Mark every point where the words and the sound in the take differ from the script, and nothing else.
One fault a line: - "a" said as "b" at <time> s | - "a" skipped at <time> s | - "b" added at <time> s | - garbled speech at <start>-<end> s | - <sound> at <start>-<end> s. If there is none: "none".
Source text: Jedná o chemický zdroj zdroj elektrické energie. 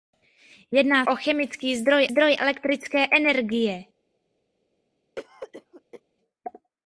- cough at 5.2-6.0 s